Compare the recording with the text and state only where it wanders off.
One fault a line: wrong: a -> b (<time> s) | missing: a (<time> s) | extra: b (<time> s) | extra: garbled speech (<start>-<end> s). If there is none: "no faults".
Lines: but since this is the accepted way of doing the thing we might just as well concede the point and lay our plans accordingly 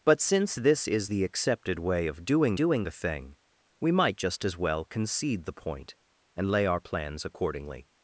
extra: doing (2.5 s)